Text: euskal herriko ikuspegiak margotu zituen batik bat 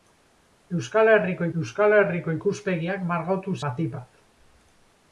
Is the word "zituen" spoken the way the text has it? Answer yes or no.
no